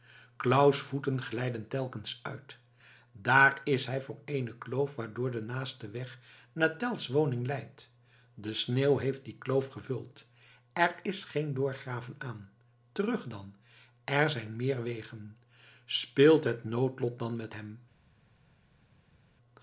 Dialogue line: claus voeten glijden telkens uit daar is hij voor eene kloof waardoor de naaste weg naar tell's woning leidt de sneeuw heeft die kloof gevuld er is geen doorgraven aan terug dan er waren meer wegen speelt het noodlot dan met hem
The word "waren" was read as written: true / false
false